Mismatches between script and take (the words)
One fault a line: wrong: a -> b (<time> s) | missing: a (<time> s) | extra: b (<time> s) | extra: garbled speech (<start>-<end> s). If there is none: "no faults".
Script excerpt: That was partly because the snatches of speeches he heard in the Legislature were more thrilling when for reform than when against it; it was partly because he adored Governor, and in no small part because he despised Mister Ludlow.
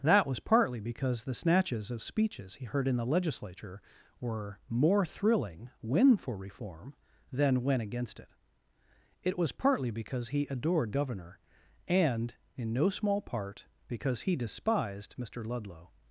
no faults